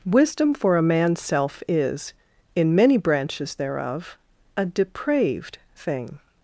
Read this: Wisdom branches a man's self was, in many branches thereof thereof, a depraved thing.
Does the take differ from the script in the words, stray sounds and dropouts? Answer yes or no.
yes